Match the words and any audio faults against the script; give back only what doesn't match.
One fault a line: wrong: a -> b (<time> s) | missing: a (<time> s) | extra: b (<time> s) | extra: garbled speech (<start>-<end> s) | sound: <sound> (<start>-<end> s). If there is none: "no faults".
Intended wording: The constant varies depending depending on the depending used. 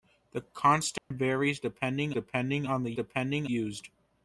sound: dropout (1.0-1.1 s)